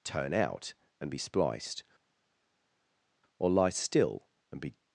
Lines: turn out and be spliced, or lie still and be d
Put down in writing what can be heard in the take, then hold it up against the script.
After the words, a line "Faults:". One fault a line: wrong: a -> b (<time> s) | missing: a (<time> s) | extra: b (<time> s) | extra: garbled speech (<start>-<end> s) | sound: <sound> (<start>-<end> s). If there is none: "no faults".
turn out and be spliced, or lie still and be
Faults:
missing: d (4.7 s)